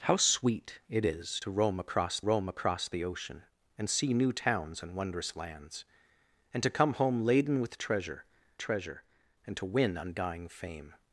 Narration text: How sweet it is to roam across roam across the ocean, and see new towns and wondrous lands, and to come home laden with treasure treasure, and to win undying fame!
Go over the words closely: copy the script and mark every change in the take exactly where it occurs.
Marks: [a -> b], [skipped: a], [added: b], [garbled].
How sweet it is to roam across roam across the ocean, and see new towns and wondrous lands, and to come home laden with treasure treasure, and to win undying fame!